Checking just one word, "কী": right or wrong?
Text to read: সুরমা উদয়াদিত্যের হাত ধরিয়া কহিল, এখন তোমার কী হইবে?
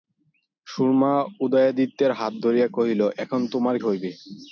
wrong